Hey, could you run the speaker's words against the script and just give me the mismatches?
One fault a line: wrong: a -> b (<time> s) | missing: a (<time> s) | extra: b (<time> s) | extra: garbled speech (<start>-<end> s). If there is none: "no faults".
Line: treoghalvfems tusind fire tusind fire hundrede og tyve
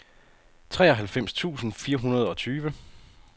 missing: tusind fire (2.0 s)